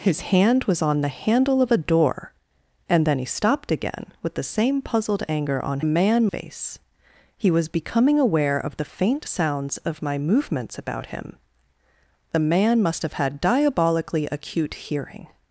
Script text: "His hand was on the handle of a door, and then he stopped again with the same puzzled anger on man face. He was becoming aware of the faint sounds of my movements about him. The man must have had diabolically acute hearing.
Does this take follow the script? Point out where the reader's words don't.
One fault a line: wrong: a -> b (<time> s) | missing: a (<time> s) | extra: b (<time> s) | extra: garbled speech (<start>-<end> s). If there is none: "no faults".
no faults